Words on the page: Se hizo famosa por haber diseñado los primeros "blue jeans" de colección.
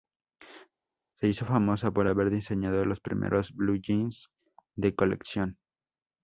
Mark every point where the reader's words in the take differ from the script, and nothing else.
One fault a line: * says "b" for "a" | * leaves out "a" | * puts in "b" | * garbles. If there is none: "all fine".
all fine